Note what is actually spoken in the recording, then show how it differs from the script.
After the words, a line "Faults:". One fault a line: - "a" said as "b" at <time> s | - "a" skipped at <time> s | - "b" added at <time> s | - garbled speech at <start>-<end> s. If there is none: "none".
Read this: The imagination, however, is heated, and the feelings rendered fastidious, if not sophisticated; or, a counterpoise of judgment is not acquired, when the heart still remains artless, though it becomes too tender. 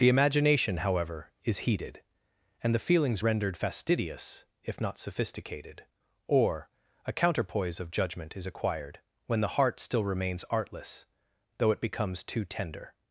The imagination, however, is heated, and the feelings rendered fastidious, if not sophisticated; or, a counterpoise of judgment is acquired, when the heart still remains artless, though it becomes too tender.
Faults:
- "not" skipped at 8.4 s